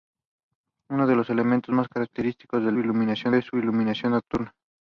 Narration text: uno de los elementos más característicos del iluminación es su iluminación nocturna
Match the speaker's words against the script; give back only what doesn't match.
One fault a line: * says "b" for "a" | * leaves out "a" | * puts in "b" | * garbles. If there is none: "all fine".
all fine